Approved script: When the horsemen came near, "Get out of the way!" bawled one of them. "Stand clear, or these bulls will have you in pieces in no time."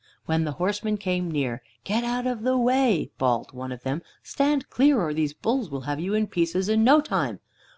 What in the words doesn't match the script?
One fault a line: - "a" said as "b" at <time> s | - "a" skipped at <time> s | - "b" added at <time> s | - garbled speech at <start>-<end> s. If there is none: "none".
none